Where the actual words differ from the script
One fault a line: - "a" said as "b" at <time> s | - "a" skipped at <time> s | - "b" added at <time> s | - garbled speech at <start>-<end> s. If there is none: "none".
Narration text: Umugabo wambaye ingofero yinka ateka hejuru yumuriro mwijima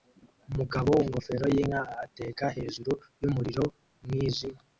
- "wambaye" skipped at 0.9 s